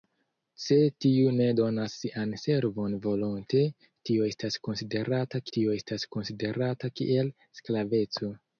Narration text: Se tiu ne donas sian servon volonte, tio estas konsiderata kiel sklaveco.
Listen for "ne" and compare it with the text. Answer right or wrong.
right